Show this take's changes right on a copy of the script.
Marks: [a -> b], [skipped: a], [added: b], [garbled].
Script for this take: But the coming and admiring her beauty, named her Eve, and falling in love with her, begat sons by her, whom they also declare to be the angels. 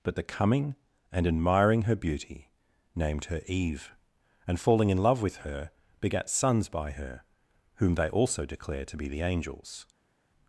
But the coming and admiring her beauty, named her Eve, and falling in love with her, begat sons by her, whom they also declare to be the angels.